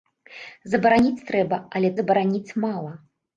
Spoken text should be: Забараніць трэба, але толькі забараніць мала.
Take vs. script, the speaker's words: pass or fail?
fail